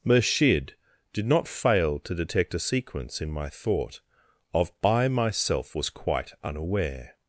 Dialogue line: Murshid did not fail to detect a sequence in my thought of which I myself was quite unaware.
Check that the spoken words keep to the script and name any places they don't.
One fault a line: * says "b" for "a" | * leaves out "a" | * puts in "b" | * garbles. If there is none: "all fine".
* leaves out "which"